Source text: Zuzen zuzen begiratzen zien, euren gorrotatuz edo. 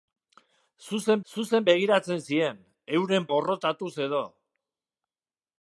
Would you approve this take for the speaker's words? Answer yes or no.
yes